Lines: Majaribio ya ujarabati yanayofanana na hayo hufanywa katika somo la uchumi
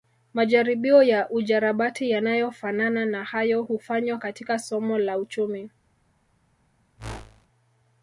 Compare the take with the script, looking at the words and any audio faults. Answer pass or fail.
fail